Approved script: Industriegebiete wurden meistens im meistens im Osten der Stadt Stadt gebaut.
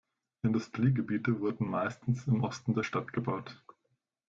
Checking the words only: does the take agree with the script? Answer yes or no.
no